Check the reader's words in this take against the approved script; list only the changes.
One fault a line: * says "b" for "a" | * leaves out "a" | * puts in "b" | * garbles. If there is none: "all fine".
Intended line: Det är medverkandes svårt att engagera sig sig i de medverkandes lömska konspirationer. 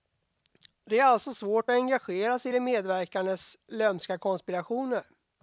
* says "alltså" for "medverkandes"
* leaves out "sig"